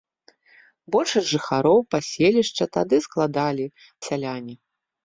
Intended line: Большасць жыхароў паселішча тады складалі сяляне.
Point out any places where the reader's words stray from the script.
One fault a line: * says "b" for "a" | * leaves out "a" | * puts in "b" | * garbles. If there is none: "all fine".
all fine